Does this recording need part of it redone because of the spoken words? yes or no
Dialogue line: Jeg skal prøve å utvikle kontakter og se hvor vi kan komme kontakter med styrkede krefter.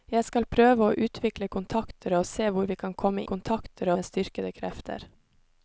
no